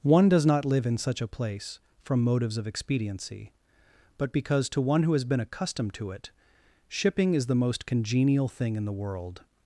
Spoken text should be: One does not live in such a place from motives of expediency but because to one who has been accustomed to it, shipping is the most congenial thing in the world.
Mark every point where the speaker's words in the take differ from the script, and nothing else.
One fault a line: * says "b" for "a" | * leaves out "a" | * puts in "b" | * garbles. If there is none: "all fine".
all fine